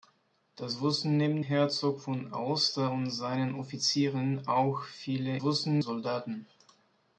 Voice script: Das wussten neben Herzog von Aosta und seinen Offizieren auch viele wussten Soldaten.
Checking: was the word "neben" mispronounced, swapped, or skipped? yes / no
no